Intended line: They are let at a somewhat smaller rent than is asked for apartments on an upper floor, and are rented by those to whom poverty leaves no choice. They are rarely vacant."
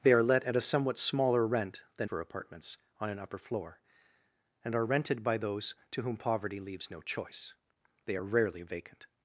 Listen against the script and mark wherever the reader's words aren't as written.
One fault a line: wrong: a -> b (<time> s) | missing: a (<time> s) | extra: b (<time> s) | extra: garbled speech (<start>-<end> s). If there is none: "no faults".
missing: is asked (2.1 s)